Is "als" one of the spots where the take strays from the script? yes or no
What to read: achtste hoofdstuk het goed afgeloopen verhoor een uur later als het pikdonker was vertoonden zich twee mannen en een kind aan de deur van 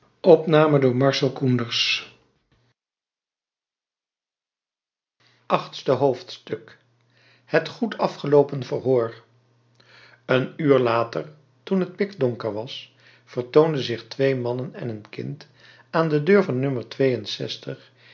yes